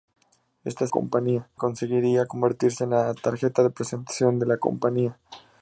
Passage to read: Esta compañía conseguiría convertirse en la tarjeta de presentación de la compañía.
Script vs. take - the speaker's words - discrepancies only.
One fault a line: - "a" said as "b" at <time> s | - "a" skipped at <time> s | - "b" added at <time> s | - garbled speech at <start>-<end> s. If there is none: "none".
none